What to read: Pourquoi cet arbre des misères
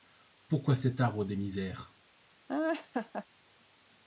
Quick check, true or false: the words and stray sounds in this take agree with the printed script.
false